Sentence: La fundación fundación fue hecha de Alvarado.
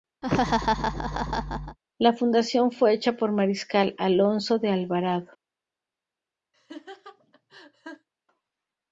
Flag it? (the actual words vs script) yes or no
yes